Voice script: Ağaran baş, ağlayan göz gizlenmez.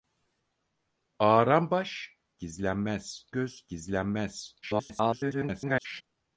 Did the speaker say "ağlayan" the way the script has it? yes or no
no